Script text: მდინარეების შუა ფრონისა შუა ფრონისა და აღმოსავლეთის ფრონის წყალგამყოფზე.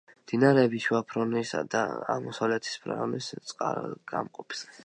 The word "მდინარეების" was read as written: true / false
true